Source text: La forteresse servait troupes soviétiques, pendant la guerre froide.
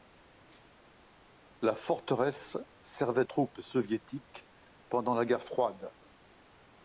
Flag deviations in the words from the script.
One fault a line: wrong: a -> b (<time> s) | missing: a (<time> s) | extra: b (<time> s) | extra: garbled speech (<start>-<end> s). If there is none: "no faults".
no faults